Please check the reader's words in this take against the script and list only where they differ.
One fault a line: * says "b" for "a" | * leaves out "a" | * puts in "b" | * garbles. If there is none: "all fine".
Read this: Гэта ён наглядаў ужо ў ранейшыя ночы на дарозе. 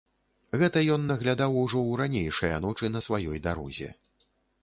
* puts in "сваёй"